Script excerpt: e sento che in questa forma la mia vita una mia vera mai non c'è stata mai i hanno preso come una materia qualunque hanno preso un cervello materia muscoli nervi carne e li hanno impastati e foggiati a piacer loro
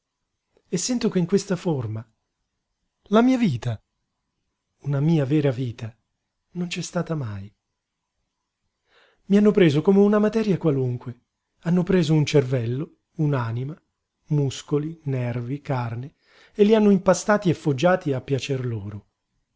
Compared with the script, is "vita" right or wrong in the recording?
right